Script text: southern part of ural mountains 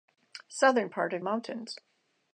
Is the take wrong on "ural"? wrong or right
wrong